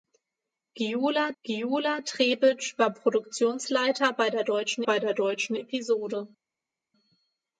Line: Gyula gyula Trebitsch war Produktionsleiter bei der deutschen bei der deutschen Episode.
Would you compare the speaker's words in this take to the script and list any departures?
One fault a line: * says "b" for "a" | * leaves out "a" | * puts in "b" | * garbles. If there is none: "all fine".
all fine